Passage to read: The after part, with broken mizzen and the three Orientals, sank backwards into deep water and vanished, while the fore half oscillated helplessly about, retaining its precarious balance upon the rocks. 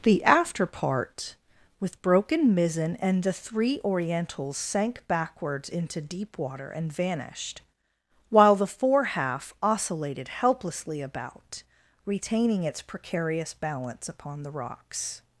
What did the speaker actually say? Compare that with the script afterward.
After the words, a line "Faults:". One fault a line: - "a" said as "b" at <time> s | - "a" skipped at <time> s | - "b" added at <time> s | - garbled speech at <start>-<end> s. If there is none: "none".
The after part, with broken mizzen and the three Orientals, sank backwards into deep water and vanished, while the fore half oscillated helplessly about, retaining its precarious balance upon the rocks.
Faults:
none